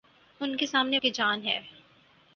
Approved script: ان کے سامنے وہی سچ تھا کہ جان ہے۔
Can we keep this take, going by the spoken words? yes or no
no